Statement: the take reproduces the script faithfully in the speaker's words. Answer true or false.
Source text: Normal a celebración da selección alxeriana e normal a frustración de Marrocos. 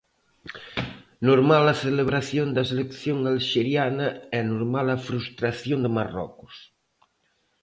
true